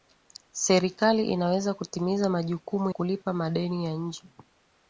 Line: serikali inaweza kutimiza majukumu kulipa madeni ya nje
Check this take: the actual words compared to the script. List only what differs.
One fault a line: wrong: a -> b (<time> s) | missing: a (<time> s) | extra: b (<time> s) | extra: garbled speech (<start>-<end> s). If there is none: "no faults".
no faults